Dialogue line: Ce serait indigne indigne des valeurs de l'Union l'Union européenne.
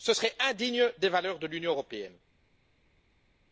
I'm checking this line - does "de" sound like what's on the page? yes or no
yes